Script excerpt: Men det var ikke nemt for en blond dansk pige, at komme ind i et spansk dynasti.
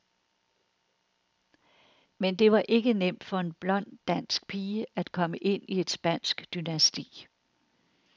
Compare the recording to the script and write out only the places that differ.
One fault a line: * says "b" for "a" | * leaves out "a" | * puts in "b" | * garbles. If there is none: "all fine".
all fine